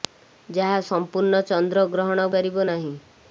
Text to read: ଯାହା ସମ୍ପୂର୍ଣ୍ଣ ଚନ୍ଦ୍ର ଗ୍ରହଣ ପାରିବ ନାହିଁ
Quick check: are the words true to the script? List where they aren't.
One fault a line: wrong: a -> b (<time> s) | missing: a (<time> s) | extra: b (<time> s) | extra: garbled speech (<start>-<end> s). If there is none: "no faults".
no faults